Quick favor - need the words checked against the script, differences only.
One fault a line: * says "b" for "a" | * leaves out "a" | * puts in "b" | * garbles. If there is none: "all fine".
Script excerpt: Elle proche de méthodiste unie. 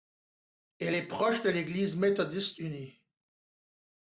* puts in "est"
* puts in "l'Église"